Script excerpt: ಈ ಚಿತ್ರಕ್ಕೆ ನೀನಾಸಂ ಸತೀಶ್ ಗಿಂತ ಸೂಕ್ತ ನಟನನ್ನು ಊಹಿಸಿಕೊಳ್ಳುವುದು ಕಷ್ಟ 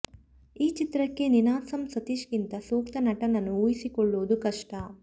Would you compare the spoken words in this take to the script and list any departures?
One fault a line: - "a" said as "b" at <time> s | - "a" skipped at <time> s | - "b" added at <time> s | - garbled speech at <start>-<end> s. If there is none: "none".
none